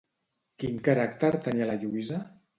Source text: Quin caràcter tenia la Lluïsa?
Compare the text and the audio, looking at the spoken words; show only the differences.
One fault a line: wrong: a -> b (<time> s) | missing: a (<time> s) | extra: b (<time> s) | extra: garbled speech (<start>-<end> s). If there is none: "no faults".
no faults